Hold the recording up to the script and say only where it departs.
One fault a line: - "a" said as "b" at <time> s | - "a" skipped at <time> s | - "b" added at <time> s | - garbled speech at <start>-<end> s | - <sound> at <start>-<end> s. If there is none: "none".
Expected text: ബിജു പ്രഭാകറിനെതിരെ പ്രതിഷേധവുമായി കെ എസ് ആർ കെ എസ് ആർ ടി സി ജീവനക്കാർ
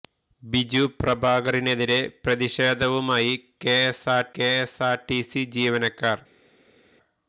none